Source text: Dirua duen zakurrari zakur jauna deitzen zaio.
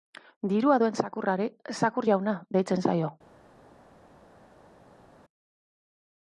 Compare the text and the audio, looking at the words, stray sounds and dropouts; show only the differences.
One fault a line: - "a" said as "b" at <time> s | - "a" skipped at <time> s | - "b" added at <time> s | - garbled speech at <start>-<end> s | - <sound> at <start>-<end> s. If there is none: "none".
none